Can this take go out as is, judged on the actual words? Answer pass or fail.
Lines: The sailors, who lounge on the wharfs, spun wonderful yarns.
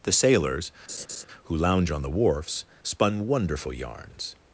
pass